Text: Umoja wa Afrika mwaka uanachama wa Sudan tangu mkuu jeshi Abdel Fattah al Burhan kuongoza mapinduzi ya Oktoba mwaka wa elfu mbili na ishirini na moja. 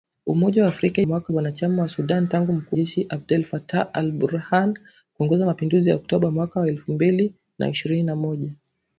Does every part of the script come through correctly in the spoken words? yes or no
yes